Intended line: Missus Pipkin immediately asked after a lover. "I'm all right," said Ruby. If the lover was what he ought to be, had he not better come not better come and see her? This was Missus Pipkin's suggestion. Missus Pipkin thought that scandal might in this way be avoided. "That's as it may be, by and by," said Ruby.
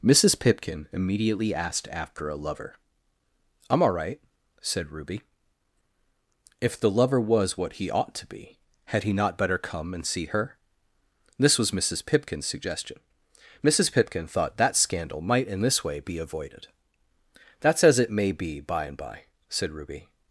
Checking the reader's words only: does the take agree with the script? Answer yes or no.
no